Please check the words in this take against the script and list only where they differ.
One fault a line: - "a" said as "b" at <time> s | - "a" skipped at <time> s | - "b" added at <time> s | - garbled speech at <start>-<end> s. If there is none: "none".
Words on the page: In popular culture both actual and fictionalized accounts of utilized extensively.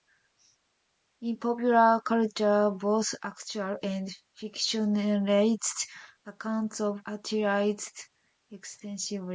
none